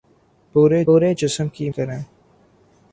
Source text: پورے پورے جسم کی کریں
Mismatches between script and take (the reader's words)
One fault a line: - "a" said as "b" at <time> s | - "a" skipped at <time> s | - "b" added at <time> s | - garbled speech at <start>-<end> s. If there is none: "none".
none